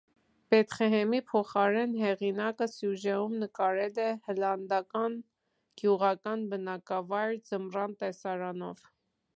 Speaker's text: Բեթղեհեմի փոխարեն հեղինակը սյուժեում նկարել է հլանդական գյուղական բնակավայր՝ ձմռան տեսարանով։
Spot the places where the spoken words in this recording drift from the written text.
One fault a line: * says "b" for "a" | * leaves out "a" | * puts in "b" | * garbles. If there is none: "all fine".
all fine